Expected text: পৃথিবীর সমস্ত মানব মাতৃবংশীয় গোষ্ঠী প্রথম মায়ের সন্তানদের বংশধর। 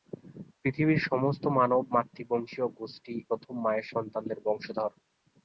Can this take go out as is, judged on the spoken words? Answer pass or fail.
pass